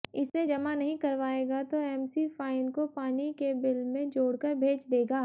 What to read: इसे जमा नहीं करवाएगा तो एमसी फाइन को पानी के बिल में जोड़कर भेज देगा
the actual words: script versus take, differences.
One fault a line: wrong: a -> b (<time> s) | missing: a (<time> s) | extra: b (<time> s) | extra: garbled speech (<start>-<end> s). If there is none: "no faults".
no faults